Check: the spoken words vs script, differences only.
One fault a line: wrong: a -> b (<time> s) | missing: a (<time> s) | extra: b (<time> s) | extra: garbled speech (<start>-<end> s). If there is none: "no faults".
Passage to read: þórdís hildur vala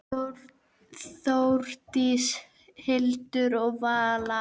extra: og (3.6 s)